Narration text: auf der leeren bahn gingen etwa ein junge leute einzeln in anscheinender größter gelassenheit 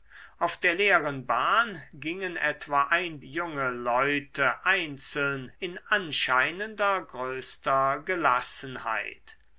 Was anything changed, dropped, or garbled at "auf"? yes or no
no